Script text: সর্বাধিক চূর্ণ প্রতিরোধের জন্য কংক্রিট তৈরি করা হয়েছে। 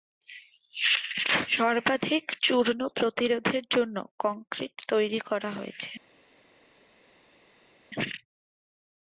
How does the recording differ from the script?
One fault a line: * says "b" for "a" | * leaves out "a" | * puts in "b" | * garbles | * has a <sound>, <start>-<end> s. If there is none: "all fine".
all fine